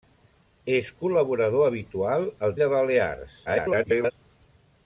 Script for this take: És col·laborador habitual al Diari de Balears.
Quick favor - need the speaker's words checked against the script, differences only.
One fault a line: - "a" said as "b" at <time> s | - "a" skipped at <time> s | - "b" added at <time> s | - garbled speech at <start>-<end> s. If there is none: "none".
- "Diari" skipped at 2.6 s
- garbled speech at 3.5-4.1 s